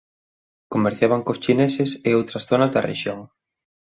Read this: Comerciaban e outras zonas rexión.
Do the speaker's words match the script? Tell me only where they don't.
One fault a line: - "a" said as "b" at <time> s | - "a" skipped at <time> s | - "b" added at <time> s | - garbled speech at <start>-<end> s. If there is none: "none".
- "cos chineses" added at 1.2 s
- "da" added at 2.7 s